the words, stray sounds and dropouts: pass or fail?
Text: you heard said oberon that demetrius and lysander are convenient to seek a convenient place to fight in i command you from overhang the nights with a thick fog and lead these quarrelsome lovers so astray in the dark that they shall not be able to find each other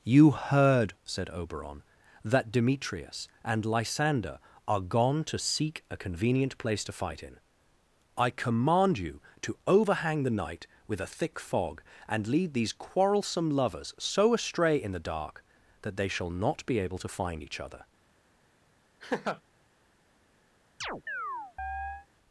fail